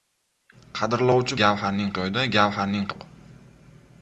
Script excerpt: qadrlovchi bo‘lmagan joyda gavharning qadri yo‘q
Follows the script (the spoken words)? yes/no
no